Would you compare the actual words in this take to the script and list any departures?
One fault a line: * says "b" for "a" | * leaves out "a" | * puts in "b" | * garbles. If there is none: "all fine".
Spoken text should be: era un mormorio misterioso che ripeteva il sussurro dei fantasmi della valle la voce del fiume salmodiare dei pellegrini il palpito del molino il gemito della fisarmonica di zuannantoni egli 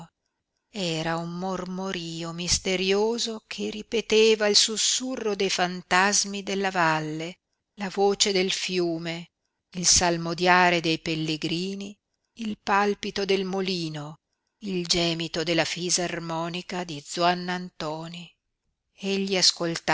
* puts in "il"